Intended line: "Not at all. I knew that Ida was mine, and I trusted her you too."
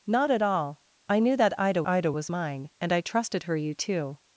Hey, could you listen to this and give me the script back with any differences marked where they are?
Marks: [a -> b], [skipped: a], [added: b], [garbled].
"Not at all. I knew that Ida [added: Ida] was mine, and I trusted her you too."